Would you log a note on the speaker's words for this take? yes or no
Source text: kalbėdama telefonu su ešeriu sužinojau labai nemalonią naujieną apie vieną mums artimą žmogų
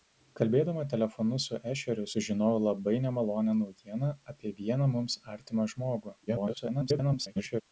yes